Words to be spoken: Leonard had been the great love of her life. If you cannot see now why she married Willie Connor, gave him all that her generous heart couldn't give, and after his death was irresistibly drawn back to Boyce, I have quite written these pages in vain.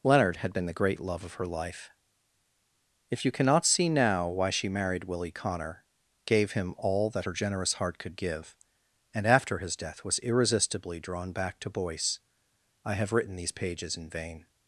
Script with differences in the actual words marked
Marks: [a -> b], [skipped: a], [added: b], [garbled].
Leonard had been the great love of her life. If you cannot see now why she married Willie Connor, gave him all that her generous heart [couldn't -> could] give, and after his death was irresistibly drawn back to Boyce, I have [skipped: quite] written these pages in vain.